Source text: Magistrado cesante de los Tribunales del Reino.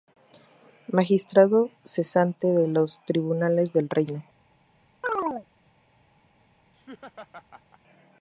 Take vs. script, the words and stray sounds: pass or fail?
fail